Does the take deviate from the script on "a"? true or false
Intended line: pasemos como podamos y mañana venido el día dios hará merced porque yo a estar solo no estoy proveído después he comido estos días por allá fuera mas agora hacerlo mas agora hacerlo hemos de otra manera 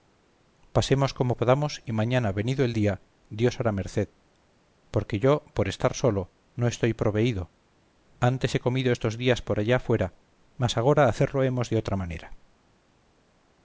true